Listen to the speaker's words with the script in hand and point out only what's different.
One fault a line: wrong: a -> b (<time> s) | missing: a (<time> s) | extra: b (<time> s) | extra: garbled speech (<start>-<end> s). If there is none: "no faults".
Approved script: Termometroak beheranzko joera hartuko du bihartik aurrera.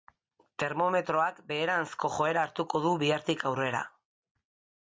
no faults